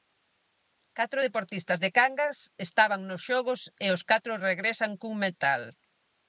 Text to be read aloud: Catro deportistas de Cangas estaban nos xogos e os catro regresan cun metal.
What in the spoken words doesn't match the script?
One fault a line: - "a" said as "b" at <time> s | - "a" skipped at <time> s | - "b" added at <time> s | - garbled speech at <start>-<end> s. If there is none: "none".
none